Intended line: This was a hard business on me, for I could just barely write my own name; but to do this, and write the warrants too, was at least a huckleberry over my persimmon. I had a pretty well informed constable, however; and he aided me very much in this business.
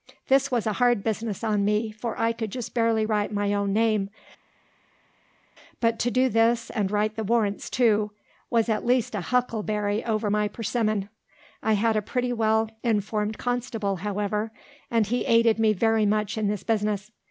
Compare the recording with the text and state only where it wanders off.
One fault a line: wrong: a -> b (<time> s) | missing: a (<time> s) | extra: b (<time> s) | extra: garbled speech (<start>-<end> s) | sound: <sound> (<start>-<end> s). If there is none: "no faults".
no faults